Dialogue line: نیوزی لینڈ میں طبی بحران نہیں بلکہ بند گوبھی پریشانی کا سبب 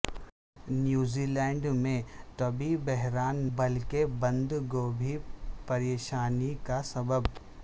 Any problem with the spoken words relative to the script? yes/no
yes